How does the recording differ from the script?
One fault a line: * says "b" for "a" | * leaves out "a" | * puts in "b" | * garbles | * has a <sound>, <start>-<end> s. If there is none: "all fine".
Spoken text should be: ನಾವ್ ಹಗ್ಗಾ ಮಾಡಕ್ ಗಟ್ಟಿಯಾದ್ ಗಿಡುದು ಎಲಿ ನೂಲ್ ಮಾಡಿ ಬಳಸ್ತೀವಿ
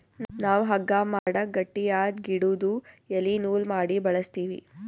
* has a dropout, 1.2-1.3 s